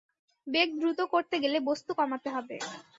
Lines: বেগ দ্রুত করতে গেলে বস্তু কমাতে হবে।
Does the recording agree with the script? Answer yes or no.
yes